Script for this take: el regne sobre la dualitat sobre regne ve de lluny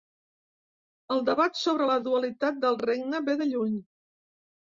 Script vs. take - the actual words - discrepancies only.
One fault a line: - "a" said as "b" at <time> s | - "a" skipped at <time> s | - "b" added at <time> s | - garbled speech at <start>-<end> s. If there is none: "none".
- "regne" said as "debat" at 1.3 s
- "sobre" said as "del" at 2.7 s